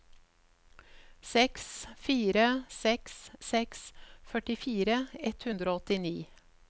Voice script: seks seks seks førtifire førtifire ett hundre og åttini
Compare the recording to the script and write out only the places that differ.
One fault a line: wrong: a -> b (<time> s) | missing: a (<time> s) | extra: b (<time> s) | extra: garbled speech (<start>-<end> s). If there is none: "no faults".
extra: fire (2.0 s)
missing: førtifire (5.0 s)